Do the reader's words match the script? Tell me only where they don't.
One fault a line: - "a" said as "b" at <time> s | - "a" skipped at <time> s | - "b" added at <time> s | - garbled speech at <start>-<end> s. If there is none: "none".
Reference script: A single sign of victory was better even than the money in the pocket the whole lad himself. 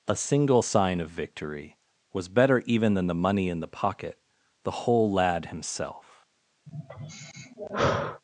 none